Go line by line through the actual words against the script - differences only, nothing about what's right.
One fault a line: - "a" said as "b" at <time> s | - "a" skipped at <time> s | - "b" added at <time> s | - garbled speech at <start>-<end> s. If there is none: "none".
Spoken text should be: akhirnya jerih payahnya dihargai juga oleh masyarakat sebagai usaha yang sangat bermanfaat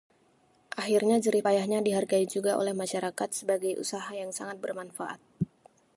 none